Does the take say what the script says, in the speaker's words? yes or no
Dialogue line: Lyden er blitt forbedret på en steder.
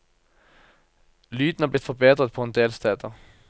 no